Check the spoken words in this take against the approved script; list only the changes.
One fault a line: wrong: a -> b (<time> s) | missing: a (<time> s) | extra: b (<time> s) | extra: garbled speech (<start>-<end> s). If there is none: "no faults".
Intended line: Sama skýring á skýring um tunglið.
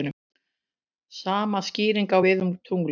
wrong: skýring -> við (2.2 s)